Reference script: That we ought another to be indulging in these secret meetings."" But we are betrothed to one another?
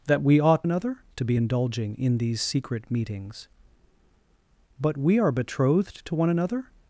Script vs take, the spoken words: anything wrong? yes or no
no